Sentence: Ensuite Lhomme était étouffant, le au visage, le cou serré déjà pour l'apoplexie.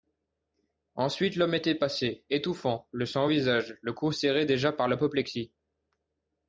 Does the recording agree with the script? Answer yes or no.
no